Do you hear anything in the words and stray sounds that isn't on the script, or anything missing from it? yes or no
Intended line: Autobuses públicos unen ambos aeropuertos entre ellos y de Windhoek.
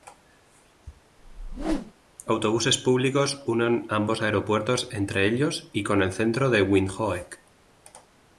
yes